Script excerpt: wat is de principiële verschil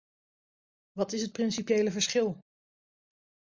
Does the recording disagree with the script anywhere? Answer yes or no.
yes